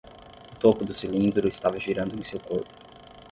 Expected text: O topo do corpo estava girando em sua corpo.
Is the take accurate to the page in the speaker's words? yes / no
no